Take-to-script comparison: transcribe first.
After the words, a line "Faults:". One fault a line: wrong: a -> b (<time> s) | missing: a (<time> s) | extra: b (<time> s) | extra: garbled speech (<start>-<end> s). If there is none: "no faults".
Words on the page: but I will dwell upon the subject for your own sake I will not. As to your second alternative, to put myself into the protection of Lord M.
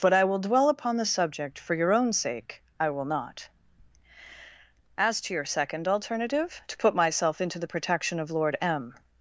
but I will dwell upon the subject for your own sake I will not. As to your second alternative, to put myself into the protection of Lord M.
Faults:
no faults